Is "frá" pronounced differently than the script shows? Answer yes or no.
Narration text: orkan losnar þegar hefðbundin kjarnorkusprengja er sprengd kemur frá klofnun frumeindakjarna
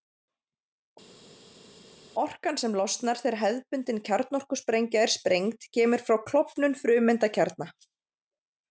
no